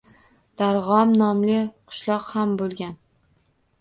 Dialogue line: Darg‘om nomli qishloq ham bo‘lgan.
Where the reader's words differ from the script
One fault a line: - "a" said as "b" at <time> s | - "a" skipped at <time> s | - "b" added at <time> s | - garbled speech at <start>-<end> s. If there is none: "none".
none